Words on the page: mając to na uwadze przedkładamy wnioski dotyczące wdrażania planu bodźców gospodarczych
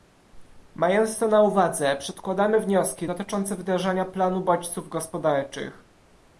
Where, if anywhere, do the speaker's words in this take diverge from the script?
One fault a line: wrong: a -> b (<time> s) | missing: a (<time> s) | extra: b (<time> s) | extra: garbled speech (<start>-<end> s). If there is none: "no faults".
no faults